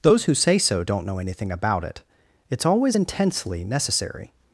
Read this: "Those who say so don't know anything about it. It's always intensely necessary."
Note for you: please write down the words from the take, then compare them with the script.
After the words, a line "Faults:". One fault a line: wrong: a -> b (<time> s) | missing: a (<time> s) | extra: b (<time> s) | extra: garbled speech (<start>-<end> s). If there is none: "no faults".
"Those who say so don't know anything about it. It's always intensely necessary."
Faults:
no faults